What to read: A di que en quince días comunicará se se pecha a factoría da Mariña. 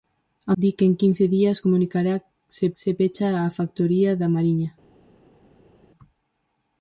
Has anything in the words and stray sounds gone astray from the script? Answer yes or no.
no